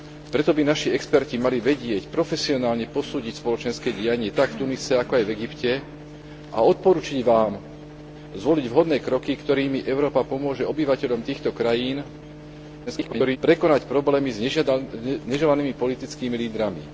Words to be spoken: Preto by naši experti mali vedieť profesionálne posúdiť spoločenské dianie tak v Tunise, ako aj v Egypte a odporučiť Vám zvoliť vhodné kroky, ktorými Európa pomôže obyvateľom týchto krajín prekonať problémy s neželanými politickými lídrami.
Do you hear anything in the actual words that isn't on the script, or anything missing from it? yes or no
yes